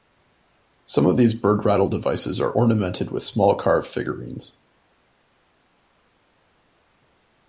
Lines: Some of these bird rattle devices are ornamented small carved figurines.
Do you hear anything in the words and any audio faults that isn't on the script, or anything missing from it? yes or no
yes